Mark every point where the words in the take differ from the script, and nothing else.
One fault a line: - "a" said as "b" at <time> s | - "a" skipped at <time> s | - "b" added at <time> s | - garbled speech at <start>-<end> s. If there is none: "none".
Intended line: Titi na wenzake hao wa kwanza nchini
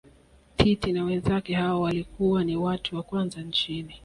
- "walikuwa ni watu" added at 1.8 s